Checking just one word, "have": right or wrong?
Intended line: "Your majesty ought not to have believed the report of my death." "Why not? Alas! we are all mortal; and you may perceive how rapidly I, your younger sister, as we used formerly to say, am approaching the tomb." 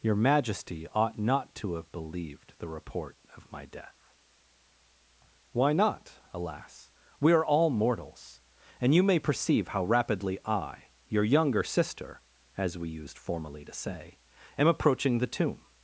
right